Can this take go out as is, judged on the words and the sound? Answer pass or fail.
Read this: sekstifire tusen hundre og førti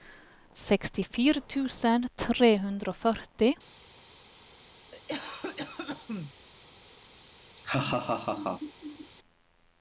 fail